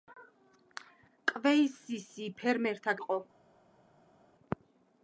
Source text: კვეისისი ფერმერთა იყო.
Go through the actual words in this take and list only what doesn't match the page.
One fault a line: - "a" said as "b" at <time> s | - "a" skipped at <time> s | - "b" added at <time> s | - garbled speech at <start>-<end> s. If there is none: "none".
none